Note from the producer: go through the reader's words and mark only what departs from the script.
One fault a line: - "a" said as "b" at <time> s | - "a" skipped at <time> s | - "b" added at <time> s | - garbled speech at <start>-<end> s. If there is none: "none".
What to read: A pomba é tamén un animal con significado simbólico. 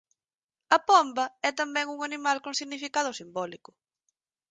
none